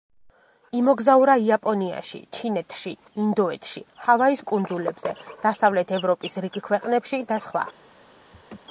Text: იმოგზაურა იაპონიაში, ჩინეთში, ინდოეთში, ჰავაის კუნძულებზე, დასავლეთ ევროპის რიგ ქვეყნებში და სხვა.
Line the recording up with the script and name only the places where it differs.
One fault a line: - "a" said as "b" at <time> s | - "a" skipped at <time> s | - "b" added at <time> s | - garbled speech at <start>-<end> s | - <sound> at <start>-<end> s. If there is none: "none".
- laugh at 8.3-8.6 s